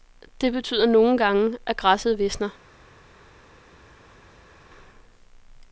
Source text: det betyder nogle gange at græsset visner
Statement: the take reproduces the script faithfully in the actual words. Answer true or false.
true